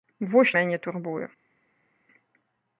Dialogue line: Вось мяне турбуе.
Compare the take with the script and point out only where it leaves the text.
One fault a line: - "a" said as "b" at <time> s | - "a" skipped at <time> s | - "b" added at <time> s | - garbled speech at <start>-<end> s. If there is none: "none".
none